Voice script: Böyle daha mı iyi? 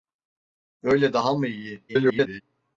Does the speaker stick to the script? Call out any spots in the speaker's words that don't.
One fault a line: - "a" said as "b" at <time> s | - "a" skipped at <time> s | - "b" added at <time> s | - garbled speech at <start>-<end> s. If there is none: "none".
- garbled speech at 1.9-2.4 s